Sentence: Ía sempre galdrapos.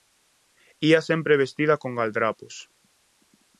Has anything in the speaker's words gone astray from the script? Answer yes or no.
yes